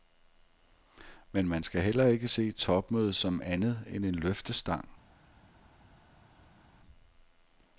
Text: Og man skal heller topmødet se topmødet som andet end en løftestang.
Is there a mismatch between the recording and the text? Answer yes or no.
yes